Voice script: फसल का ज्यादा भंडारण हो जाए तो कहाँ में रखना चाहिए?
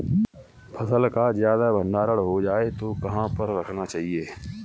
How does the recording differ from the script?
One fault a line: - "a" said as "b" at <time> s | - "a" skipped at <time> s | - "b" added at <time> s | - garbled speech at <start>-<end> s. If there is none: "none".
- "में" said as "पर" at 3.3 s